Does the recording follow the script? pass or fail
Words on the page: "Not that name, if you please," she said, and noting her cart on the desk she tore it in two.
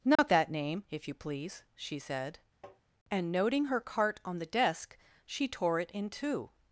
pass